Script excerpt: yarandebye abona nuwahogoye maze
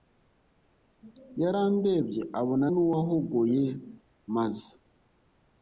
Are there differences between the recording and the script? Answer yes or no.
no